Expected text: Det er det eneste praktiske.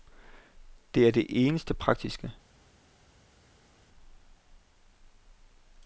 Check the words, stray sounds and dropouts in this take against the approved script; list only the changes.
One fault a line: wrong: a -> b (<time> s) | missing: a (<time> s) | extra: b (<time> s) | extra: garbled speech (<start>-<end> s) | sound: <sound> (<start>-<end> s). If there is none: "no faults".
no faults